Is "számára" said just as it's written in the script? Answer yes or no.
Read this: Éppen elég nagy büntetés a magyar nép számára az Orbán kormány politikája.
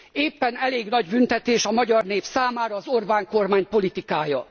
yes